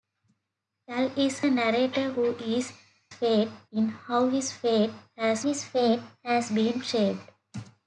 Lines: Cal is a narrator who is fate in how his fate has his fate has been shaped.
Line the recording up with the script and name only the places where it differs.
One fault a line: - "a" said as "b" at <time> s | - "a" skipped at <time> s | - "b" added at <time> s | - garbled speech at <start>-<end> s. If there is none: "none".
none